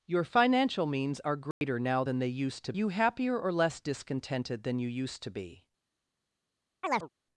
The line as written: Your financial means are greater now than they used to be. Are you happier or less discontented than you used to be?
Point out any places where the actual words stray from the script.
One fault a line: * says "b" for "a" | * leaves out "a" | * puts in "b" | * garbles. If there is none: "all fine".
* leaves out "be Are"